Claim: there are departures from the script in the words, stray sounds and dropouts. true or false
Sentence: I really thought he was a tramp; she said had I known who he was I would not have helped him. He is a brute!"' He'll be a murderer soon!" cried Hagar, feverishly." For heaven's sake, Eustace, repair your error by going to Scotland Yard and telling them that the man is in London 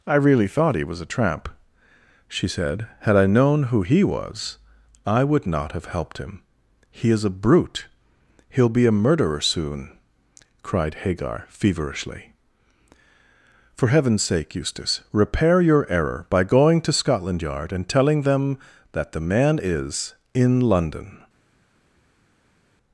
false